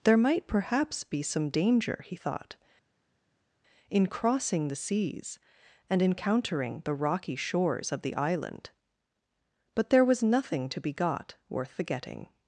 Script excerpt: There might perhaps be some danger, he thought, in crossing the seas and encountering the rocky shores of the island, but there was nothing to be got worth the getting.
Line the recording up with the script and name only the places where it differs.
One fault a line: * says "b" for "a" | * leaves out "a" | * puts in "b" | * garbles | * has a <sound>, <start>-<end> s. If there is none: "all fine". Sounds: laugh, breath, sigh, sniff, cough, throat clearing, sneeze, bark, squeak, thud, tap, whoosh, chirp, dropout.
all fine